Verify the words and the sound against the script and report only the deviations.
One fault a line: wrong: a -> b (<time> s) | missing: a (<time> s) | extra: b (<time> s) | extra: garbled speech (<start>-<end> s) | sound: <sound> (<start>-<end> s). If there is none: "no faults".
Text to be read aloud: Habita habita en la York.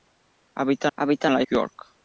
no faults